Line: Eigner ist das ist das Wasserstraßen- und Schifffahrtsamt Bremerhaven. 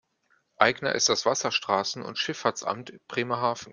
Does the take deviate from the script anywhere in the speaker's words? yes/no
yes